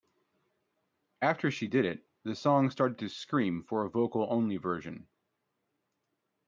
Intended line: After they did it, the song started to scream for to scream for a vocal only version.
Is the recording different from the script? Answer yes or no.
yes